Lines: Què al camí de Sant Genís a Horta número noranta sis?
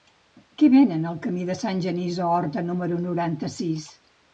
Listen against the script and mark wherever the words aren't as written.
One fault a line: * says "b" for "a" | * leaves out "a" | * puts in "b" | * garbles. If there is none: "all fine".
* puts in "venen"